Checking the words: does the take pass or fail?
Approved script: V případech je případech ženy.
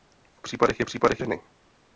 pass